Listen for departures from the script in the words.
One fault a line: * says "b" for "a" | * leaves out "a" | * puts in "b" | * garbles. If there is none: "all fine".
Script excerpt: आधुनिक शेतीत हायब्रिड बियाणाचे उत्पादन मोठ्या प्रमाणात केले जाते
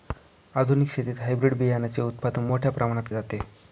* leaves out "केले"